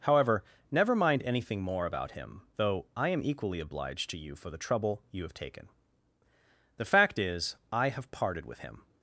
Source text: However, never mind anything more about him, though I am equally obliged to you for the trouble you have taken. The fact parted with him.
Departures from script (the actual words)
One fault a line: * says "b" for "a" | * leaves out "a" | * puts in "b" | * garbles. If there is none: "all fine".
* puts in "is I have"